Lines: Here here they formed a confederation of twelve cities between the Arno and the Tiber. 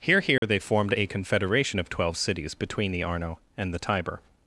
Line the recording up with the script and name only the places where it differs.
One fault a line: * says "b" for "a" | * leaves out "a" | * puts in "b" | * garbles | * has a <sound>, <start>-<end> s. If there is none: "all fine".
* has a dropout, 0.4-0.4 s